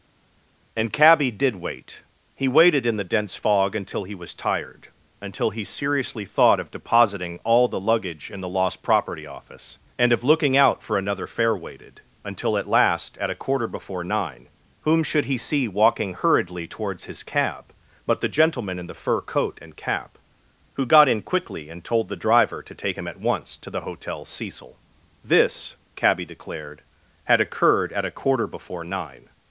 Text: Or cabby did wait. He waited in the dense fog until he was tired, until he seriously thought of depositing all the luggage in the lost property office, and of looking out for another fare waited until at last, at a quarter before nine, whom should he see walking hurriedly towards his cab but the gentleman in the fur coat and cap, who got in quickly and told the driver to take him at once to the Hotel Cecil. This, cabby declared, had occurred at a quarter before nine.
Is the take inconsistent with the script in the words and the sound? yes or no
yes